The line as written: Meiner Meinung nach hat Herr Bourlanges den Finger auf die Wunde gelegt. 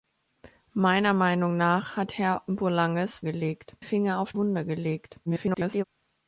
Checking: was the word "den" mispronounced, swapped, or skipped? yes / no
yes